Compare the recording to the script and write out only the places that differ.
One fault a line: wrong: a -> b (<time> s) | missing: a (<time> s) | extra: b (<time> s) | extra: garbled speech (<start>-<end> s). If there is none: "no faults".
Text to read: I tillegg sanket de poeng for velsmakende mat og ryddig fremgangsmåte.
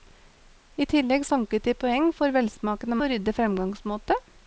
missing: mat (3.0 s)